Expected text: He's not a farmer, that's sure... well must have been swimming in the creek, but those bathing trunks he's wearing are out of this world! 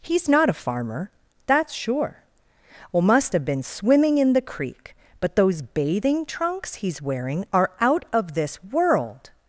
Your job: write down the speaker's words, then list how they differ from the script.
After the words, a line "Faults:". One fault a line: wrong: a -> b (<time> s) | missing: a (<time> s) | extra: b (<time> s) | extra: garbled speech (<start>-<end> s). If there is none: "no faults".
He's not a farmer, that's sure... well must have been swimming in the creek, but those bathing trunks he's wearing are out of this world!
Faults:
no faults